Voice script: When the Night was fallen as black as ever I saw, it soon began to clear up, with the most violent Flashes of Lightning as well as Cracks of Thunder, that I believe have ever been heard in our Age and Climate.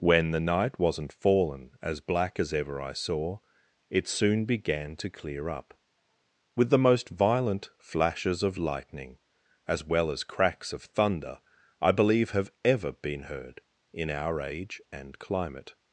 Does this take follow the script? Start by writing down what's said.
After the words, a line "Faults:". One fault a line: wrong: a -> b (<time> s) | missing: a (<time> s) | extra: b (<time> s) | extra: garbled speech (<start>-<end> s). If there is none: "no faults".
When the Night wasn't fallen as black as ever I saw, it soon began to clear up, with the most violent Flashes of Lightning as well as Cracks of Thunder, I believe have ever been heard in our Age and Climate.
Faults:
wrong: was -> wasn't (0.8 s)
missing: that (11.4 s)